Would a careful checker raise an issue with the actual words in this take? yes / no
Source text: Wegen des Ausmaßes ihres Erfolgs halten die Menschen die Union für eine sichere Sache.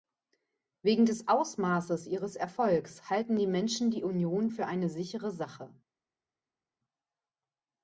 no